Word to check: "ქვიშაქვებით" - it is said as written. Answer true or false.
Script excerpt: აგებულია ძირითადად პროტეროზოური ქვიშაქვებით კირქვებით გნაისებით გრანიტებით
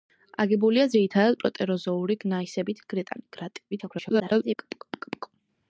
false